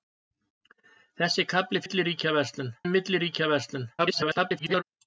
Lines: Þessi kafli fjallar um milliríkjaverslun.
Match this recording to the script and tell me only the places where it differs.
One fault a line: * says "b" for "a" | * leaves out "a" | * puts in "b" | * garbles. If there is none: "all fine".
* says "milliríkjaverslun" for "fjallar"
* garbles